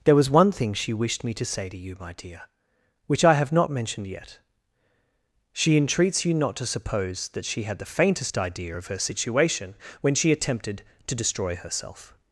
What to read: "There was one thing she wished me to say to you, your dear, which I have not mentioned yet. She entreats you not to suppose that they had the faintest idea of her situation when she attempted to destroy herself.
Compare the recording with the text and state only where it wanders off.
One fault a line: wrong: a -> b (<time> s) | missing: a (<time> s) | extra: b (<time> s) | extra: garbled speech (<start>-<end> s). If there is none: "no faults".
wrong: your -> my (2.0 s)
wrong: they -> she (7.5 s)